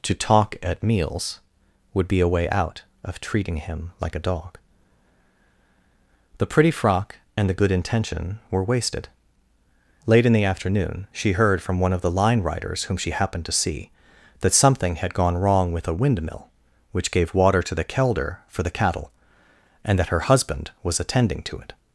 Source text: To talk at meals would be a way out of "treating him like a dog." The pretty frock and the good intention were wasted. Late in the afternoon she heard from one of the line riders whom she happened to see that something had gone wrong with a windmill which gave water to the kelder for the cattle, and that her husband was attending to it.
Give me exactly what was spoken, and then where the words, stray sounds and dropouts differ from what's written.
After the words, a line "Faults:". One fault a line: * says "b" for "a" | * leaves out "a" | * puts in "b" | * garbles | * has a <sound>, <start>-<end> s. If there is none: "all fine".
To talk at meals would be a way out of "treating him like a dog." The pretty frock and the good intention were wasted. Late in the afternoon she heard from one of the line riders whom she happened to see that something had gone wrong with a windmill which gave water to the kelder for the cattle, and that her husband was attending to it.
Faults:
all fine